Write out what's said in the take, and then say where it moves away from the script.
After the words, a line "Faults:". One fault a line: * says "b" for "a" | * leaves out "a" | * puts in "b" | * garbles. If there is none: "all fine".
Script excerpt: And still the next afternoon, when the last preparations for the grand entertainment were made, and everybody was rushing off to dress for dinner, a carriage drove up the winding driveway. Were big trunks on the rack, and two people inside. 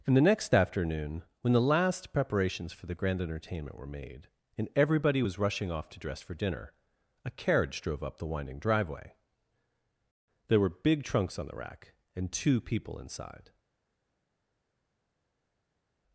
And the next afternoon, when the last preparations for the grand entertainment were made, and everybody was rushing off to dress for dinner, a carriage drove up the winding driveway. There were big trunks on the rack, and two people inside.
Faults:
* leaves out "still"
* puts in "There"